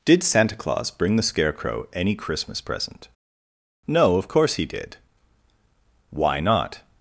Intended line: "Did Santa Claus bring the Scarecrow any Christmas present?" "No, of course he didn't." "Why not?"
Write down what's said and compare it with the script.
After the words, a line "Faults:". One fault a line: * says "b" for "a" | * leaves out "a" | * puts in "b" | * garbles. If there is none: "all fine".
"Did Santa Claus bring the Scarecrow any Christmas present?" "No, of course he did." "Why not?"
Faults:
* says "did" for "didn't"